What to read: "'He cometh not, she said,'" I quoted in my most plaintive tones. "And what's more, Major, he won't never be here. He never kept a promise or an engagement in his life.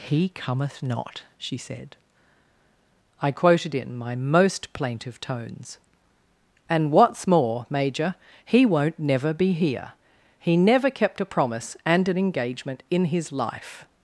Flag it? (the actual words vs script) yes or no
yes